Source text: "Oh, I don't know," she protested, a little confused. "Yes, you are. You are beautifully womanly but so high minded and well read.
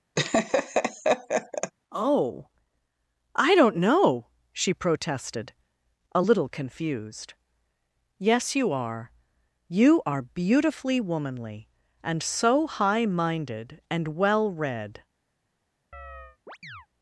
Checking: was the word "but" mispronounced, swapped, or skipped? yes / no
yes